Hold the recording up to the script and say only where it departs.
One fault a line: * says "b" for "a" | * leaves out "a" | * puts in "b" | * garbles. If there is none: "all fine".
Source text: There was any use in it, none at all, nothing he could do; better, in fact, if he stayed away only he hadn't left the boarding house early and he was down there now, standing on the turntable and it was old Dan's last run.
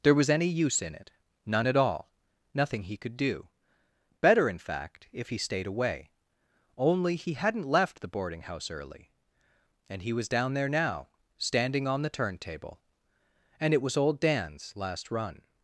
all fine